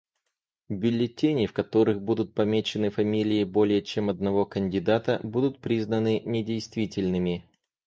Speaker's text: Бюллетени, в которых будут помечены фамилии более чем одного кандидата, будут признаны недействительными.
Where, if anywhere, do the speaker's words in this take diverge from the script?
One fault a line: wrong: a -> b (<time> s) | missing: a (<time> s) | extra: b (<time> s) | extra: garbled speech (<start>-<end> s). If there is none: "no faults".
no faults